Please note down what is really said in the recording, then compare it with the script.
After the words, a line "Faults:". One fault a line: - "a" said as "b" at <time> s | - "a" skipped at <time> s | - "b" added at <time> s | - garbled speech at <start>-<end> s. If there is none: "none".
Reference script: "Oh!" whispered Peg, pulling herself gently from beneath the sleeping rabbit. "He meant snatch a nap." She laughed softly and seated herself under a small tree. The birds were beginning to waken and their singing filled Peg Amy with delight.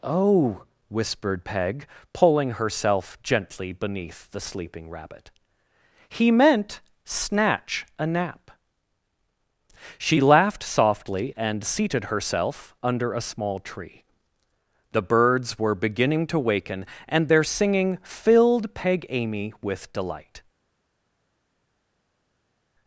"Oh!" whispered Peg, pulling herself gently beneath the sleeping rabbit. "He meant snatch a nap." She laughed softly and seated herself under a small tree. The birds were beginning to waken and their singing filled Peg Amy with delight.
Faults:
- "from" skipped at 3.7 s